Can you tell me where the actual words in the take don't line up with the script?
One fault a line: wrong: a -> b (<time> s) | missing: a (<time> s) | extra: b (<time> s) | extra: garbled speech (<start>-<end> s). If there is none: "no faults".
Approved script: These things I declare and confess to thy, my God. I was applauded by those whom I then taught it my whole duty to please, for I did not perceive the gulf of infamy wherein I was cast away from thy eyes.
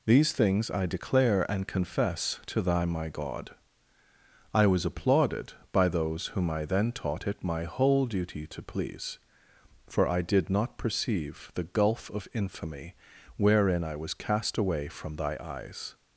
no faults